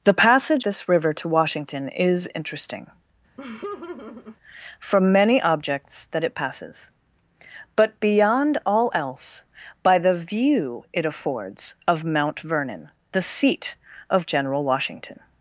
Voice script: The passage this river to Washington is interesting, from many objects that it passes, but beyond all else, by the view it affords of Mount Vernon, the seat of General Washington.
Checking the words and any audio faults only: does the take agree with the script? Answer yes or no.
no